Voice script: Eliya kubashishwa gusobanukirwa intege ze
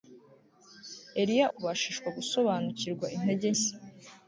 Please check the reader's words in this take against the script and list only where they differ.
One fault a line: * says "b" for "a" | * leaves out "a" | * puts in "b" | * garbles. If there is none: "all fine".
all fine